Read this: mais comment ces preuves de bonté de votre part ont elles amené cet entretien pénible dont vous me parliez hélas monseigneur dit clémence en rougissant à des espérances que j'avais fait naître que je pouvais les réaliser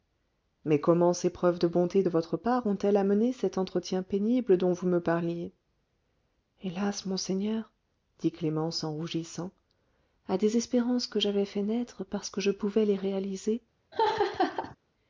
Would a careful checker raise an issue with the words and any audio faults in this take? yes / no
yes